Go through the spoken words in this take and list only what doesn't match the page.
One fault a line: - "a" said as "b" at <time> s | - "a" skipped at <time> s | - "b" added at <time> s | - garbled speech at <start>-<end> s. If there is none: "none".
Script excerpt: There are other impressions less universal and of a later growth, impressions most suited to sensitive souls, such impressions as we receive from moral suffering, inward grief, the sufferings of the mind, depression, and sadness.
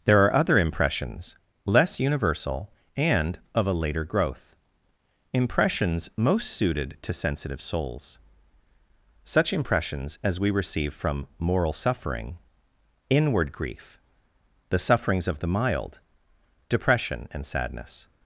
- "mind" said as "mild" at 15.5 s